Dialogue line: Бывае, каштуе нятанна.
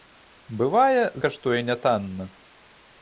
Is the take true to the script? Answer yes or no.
yes